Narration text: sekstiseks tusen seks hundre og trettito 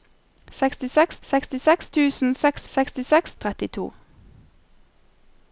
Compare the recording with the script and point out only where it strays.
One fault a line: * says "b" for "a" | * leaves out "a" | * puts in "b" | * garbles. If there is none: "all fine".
* puts in "sekstiseks"
* says "sekstiseks" for "hundre"